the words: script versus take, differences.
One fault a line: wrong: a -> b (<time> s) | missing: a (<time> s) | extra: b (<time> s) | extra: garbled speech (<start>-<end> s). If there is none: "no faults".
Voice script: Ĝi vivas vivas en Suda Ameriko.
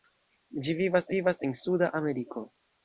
no faults